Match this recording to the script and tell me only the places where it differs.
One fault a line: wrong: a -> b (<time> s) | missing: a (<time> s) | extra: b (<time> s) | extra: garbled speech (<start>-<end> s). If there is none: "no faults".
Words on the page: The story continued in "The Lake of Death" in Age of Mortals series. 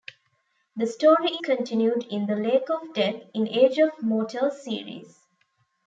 no faults